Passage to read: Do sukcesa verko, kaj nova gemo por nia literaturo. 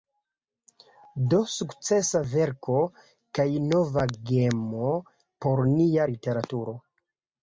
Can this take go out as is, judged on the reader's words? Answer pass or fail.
pass